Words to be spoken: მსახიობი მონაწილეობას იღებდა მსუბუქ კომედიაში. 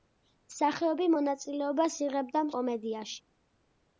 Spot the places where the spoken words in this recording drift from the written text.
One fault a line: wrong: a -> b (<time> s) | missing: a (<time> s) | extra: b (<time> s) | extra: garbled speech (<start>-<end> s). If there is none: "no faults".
missing: მსუბუქ (2.5 s)